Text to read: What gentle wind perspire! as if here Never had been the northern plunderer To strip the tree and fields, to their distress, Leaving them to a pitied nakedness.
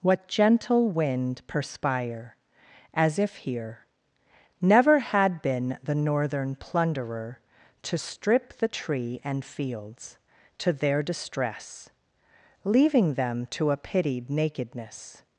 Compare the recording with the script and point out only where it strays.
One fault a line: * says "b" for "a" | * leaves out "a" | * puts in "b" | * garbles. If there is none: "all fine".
all fine